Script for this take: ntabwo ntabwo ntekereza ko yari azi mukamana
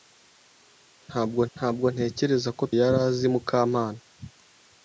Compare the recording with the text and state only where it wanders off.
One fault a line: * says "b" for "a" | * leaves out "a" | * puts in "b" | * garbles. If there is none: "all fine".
all fine